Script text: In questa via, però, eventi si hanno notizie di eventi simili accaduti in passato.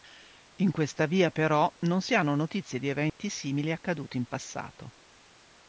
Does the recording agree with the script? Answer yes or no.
no